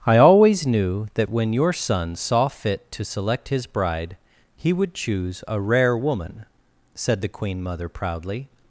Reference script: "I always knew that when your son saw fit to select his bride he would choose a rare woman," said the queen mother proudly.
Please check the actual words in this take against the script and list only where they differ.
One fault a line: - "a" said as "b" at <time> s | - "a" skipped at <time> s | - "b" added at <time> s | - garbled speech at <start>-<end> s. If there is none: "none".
none